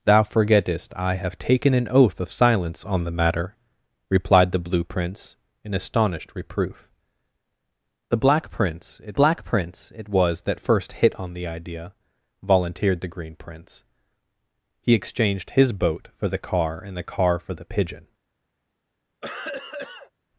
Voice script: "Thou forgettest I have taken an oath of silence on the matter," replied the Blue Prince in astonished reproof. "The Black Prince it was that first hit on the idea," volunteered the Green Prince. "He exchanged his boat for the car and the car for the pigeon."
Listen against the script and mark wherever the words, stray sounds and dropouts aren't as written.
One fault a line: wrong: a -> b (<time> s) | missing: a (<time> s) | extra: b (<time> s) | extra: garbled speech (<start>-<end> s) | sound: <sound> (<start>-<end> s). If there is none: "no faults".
extra: Black Prince it (9.1 s)
sound: cough (19.2-20.1 s)